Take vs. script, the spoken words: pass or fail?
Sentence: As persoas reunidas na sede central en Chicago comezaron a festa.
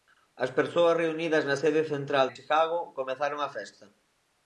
pass